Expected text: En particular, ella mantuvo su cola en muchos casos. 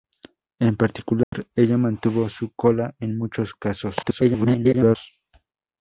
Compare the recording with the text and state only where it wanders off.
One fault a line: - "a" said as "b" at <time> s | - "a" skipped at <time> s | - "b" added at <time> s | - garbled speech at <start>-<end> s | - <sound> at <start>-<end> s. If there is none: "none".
- dropout at 1.2-1.3 s
- garbled speech at 4.0-5.0 s